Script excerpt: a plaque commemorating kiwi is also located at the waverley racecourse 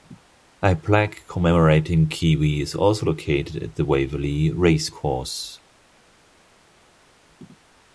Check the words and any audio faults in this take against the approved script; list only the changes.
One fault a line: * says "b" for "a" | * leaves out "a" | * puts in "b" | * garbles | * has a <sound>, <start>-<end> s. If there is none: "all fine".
all fine